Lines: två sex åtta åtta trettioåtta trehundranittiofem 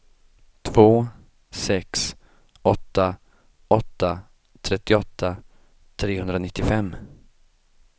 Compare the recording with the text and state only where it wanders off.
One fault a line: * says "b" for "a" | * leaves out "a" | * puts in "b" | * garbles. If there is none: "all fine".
all fine